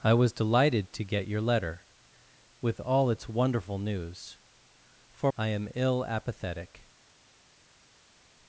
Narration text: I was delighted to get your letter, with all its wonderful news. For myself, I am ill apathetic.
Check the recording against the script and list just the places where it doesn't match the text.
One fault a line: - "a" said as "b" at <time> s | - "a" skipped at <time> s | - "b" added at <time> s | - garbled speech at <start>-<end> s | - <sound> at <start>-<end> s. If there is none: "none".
- "myself" skipped at 5.3 s